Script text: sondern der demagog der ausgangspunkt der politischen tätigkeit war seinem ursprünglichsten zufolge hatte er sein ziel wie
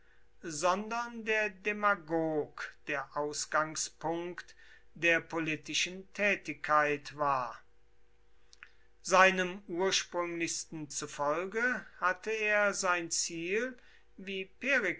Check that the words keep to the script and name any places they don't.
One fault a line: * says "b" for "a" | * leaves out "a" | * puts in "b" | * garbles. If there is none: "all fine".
all fine